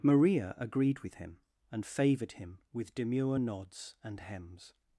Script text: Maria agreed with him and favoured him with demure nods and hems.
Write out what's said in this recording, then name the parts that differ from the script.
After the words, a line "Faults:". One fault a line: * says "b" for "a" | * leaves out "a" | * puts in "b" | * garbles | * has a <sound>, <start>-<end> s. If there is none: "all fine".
Maria agreed with him and favoured him with demure nods and hems.
Faults:
all fine